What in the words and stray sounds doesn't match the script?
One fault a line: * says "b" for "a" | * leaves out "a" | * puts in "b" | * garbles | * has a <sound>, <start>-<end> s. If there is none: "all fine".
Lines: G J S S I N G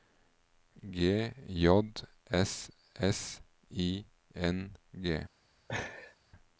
* has a laugh, 5.7-6.2 s